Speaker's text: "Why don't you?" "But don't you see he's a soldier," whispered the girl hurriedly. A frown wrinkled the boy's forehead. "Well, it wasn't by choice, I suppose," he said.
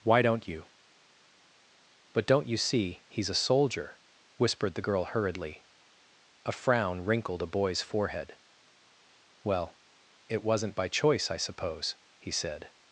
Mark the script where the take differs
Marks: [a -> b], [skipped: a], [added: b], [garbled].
"Why don't you?" "But don't you see he's a soldier," whispered the girl hurriedly. A frown wrinkled [the -> a] boy's forehead. "Well, it wasn't by choice, I suppose," he said.